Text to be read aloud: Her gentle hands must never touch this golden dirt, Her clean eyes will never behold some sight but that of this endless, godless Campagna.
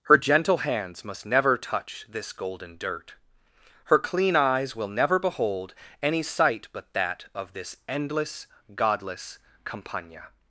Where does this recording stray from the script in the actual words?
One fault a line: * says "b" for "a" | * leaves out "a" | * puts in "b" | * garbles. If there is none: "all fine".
* says "any" for "some"